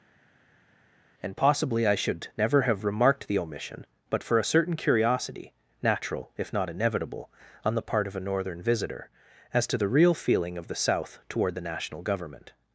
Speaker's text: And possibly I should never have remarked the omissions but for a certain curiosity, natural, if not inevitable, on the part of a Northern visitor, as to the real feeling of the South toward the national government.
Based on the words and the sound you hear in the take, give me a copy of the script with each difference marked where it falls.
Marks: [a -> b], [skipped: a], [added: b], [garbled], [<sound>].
And possibly I should never have remarked the [omissions -> omission] but for a certain curiosity, natural, if not inevitable, on the part of a Northern visitor, as to the real feeling of the South toward the national government.